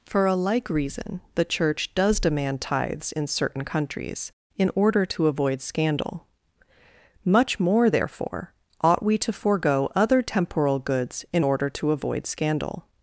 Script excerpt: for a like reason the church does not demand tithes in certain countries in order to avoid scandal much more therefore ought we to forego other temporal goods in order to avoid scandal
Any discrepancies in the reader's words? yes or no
yes